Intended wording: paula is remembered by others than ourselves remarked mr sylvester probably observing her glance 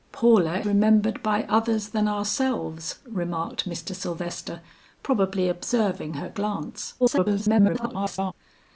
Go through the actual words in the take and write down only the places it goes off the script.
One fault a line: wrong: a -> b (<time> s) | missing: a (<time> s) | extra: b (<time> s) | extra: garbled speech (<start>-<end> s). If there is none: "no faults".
missing: is (0.6 s)
extra: garbled speech (7.0-8.3 s)